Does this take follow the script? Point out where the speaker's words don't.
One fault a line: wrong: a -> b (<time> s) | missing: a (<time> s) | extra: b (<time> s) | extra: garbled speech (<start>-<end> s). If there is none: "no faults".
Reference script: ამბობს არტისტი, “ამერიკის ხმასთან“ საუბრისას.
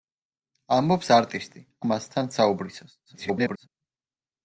missing: ამერიკის (1.6 s)
extra: garbled speech (3.1-3.7 s)